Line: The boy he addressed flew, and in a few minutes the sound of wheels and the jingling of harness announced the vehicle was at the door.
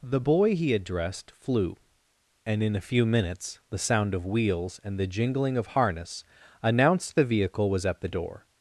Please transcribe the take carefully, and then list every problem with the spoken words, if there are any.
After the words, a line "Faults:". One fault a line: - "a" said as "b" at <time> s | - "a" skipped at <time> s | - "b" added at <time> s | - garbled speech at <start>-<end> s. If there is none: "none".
The boy he addressed flew, and in a few minutes the sound of wheels and the jingling of harness announced the vehicle was at the door.
Faults:
none